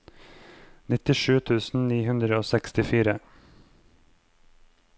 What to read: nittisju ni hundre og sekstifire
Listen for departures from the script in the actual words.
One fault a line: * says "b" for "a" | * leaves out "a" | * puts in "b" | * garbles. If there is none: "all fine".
* puts in "tusen"